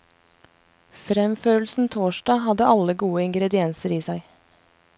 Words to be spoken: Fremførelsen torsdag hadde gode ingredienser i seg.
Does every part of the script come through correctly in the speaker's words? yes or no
no